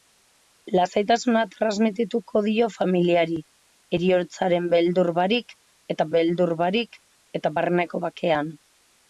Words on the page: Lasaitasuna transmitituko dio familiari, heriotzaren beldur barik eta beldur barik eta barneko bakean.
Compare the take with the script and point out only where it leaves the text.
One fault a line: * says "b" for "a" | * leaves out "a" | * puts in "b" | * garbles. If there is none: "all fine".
all fine